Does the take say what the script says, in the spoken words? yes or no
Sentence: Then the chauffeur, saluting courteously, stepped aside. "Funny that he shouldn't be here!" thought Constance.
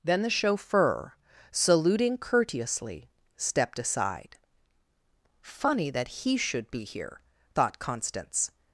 no